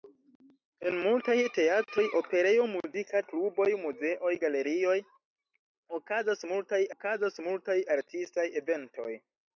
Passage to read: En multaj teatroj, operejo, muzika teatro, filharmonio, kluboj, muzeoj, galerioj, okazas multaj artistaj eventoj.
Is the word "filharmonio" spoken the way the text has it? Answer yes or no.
no